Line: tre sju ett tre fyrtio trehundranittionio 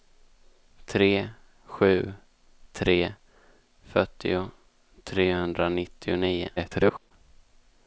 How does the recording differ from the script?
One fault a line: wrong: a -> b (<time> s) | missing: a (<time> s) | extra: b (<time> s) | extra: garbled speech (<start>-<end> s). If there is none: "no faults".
missing: ett (2.1 s)
extra: garbled speech (6.6-7.1 s)